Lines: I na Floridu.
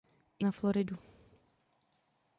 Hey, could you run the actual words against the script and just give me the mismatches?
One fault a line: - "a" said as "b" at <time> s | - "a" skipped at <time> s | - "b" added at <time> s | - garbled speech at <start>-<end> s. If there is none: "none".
none